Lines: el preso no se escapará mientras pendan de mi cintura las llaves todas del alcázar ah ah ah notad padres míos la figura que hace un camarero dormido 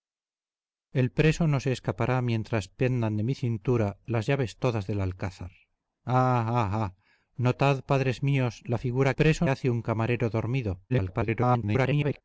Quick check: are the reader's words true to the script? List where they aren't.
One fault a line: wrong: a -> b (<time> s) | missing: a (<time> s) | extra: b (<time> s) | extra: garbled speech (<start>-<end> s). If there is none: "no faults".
wrong: que -> preso (9.1 s)
extra: garbled speech (10.9-12.2 s)